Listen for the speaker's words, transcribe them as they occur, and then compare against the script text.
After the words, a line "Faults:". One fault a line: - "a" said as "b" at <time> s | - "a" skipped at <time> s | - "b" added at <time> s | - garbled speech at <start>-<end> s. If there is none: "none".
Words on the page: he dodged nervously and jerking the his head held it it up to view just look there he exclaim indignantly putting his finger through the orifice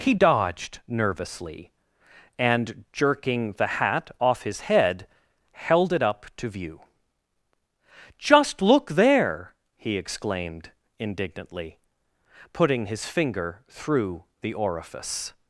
he dodged nervously and jerking the hat off his head held it up to view just look there he exclaimed indignantly putting his finger through the orifice
Faults:
- "hat off" added at 3.8 s
- "it" skipped at 6.0 s
- "exclaim" said as "exclaimed" at 10.0 s